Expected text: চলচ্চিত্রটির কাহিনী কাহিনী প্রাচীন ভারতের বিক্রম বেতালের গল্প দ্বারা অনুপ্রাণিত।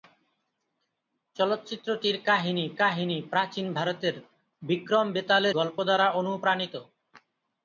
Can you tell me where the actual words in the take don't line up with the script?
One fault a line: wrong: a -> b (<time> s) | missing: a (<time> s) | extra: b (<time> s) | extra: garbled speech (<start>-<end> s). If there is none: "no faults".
no faults